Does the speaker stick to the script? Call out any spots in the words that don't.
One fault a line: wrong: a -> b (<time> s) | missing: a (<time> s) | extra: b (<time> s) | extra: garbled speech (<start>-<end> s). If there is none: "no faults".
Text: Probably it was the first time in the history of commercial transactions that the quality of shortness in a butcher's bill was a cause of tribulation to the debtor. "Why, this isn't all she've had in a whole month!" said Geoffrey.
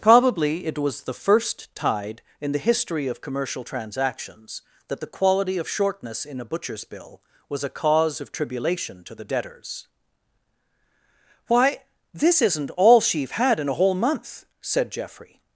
wrong: time -> tide (1.8 s)
wrong: debtor -> debtors (9.2 s)